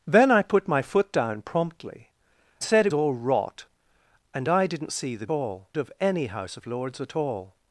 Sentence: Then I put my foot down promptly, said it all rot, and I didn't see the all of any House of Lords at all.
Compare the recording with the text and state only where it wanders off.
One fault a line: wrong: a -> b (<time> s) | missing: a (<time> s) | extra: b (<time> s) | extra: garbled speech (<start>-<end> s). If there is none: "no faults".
no faults